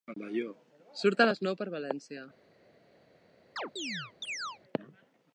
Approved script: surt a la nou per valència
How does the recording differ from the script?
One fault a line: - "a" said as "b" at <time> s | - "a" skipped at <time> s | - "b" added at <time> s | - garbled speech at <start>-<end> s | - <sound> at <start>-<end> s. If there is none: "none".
- "la" said as "les" at 1.3 s
- chirp at 3.6-4.6 s